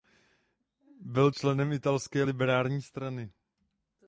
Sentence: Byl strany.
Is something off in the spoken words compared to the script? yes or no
yes